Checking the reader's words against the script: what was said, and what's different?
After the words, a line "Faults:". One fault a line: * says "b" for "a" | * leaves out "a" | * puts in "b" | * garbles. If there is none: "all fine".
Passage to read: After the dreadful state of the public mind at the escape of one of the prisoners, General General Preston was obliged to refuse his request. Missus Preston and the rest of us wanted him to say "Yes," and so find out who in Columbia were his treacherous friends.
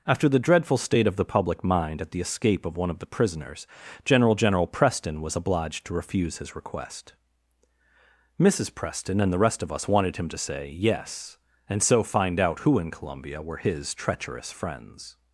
After the dreadful state of the public mind at the escape of one of the prisoners, General General Preston was obliged to refuse his request. Missus Preston and the rest of us wanted him to say "Yes," and so find out who in Columbia were his treacherous friends.
Faults:
all fine